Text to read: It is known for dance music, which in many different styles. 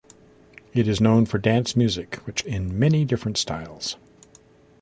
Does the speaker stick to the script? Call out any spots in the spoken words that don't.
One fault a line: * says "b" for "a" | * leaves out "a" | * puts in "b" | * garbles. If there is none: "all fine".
all fine